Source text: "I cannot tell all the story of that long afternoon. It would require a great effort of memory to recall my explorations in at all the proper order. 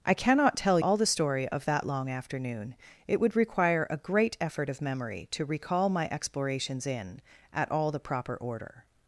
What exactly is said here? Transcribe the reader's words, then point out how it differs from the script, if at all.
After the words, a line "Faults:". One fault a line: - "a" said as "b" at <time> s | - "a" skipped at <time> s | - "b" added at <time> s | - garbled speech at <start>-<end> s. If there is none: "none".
"I cannot tell all the story of that long afternoon. It would require a great effort of memory to recall my explorations in at all the proper order.
Faults:
none